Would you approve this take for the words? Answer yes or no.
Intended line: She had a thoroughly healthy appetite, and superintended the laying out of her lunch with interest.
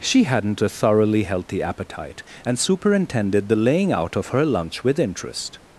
no